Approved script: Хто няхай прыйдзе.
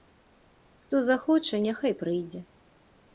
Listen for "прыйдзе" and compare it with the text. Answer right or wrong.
right